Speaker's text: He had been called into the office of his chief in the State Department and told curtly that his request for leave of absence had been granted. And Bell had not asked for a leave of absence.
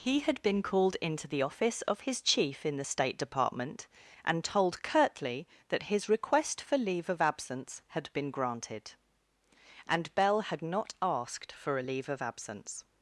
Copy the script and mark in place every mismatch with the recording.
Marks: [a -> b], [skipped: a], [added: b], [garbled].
He had been called into the office of his chief in the State Department and told curtly that his request for leave of absence had been granted. And Bell had not asked for a leave of absence.